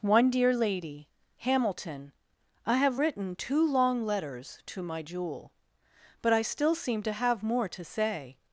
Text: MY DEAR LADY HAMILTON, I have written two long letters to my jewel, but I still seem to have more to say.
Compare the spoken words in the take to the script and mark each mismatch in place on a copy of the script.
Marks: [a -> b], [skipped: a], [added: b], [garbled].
[MY -> One] DEAR LADY HAMILTON, I have written two long letters to my jewel, but I still seem to have more to say.